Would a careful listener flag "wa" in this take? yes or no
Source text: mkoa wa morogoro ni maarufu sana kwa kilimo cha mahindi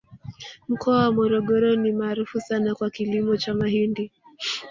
no